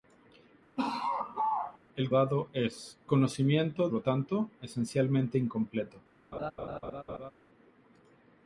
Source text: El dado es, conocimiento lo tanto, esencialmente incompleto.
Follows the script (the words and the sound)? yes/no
no